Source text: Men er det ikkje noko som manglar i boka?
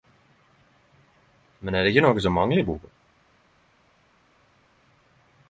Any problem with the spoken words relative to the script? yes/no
no